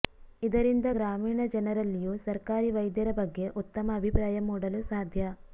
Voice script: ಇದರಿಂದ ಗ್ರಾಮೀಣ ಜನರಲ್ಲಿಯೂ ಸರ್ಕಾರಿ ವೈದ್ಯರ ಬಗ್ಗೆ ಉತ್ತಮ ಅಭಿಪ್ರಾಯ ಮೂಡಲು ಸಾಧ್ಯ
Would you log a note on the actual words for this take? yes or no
no